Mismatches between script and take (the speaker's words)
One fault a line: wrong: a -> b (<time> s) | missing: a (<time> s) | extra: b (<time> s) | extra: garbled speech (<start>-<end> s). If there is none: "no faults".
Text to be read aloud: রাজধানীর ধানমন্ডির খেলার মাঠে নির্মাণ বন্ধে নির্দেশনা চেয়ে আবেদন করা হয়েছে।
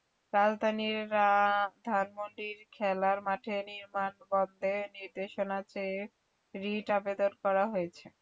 extra: রিট (6.5 s)